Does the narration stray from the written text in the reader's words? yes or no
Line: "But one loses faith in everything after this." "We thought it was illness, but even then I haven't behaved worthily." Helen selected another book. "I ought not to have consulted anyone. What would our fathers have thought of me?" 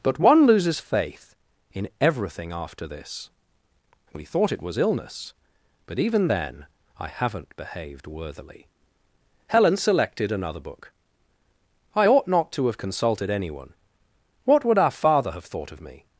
yes